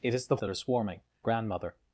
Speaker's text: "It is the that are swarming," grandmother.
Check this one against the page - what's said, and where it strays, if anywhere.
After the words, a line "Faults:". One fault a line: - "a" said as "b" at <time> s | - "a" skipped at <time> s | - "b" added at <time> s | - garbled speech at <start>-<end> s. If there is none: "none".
"It is the that are swarming," grandmother.
Faults:
none